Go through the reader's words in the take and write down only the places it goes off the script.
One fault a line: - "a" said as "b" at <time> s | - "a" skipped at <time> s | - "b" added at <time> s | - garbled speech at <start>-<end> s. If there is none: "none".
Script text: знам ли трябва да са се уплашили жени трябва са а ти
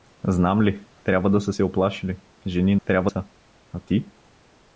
none